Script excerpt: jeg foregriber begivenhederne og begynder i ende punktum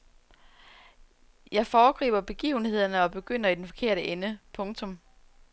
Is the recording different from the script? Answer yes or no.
yes